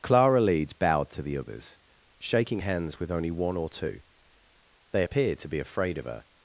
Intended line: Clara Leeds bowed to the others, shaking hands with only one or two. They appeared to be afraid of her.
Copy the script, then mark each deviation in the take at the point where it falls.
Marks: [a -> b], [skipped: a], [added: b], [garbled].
Clara Leeds bowed to the others, shaking hands with only one or two. They appeared to be afraid of her.